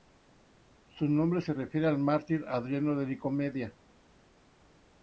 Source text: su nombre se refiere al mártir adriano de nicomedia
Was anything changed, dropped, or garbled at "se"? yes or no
no